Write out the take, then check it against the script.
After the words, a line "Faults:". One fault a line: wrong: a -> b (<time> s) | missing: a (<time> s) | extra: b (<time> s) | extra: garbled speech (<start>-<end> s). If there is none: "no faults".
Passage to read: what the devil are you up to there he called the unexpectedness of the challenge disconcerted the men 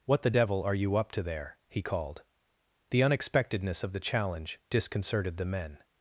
what the devil are you up to there he called the unexpectedness of the challenge disconcerted the men
Faults:
no faults